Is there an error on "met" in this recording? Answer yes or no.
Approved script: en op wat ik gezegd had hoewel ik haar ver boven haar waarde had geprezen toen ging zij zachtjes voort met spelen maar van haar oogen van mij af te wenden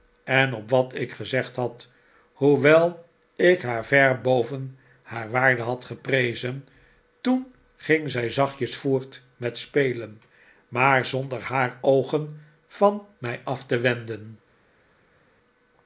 no